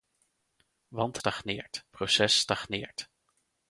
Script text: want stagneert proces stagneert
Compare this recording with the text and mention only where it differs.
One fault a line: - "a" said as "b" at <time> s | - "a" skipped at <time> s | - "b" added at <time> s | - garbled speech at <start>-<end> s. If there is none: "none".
none